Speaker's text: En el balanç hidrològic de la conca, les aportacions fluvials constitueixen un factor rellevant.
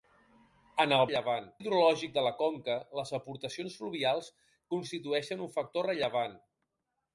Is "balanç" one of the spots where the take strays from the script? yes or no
yes